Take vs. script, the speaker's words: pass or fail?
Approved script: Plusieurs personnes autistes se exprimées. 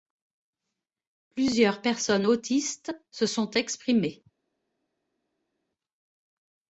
fail